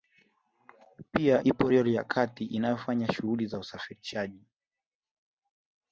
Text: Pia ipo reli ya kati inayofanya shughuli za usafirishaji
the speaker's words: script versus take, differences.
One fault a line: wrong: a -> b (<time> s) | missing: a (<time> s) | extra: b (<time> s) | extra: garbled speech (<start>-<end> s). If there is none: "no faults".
no faults